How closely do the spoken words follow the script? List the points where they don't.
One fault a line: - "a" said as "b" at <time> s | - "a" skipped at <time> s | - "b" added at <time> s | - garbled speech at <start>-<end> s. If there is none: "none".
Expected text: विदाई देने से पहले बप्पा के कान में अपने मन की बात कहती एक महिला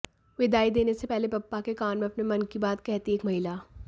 none